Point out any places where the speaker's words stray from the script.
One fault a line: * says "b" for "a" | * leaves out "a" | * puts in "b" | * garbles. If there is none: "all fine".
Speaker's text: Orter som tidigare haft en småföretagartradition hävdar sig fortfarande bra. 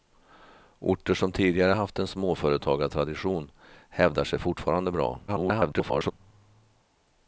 * garbles